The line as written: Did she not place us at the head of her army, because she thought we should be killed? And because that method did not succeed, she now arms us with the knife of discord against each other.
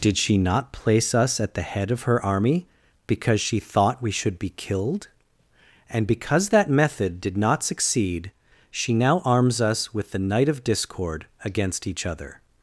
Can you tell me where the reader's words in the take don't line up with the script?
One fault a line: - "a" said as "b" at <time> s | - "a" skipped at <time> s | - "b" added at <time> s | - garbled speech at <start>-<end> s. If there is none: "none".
- "knife" said as "night" at 10.2 s